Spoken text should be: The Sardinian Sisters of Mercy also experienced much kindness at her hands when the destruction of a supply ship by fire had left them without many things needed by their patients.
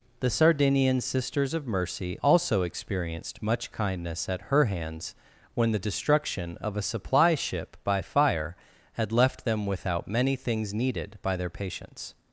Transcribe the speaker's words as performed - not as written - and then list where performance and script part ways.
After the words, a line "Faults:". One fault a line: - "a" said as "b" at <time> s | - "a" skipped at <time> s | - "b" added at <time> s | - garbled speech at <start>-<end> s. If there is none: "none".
The Sardinian Sisters of Mercy also experienced much kindness at her hands when the destruction of a supply ship by fire had left them without many things needed by their patients.
Faults:
none